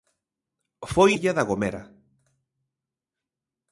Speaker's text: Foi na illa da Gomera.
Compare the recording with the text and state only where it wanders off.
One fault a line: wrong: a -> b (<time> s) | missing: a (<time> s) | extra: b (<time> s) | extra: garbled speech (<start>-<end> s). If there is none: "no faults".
missing: na (1.1 s)